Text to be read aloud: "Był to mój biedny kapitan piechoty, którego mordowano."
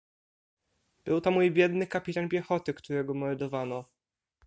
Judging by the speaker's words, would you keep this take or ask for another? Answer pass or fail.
pass